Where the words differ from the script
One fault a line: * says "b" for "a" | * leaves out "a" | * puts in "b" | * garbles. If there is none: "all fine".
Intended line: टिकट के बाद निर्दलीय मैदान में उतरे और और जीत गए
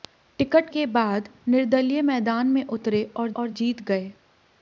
all fine